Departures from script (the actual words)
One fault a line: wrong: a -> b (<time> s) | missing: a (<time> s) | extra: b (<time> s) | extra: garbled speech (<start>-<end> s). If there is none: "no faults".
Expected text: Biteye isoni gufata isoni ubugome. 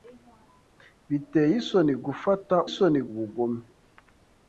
no faults